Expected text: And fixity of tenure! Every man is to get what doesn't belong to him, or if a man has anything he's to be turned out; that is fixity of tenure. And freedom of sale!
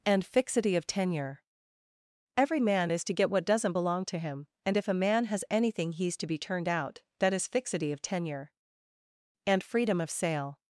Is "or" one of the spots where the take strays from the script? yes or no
yes